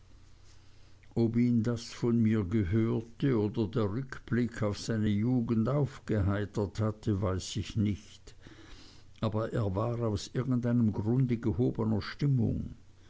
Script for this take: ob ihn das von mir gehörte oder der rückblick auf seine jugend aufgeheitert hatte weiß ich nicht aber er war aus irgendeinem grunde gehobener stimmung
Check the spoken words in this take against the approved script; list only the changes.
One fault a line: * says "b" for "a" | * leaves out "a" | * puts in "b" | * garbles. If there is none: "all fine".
all fine